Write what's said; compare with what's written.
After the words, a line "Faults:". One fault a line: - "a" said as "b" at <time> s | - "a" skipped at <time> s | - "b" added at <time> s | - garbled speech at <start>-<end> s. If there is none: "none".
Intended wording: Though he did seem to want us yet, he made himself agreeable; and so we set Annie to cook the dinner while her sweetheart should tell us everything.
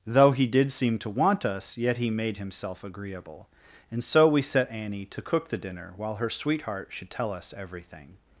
Though he did seem to want us yet, he made himself agreeable; and so we set Annie to cook the dinner while her sweetheart should tell us everything.
Faults:
none